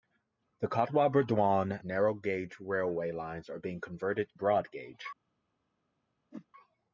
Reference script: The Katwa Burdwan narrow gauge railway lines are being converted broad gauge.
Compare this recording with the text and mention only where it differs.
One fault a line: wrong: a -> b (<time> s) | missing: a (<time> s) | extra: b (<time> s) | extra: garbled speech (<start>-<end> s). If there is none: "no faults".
no faults